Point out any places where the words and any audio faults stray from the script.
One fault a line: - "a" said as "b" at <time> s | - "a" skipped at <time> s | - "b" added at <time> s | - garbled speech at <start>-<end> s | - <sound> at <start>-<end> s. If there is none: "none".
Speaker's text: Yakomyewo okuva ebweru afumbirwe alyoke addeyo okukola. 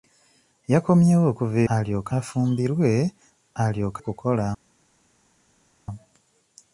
- "ebweru" said as "alyoke" at 1.7 s
- "addeyo" skipped at 4.0 s